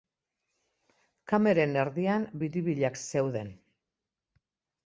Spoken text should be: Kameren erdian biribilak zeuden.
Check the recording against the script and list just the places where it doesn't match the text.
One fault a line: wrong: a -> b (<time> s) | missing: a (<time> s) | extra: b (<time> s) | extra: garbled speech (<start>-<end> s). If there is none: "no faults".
no faults